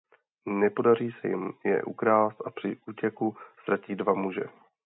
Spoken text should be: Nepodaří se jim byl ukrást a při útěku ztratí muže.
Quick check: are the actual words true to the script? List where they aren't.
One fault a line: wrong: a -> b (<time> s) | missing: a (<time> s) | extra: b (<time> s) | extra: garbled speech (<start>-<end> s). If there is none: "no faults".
wrong: byl -> je (1.6 s)
extra: dva (3.9 s)